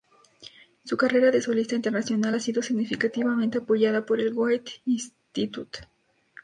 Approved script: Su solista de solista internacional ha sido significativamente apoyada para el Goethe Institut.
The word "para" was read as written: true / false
false